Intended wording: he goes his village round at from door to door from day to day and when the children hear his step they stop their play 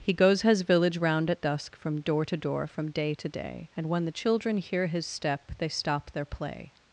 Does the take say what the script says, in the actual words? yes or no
no